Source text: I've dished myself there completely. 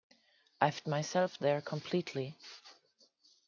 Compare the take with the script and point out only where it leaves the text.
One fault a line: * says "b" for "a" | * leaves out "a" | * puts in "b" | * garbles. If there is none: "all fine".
* leaves out "dished"